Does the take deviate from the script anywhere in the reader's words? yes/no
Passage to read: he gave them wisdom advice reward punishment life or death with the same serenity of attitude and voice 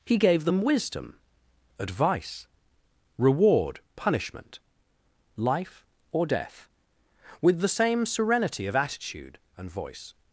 no